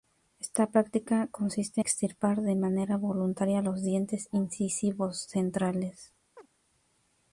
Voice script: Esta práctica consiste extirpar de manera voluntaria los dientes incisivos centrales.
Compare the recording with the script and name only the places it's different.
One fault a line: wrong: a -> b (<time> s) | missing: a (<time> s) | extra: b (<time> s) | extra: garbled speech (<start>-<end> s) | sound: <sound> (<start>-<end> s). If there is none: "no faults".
sound: chirp (6.4-6.5 s)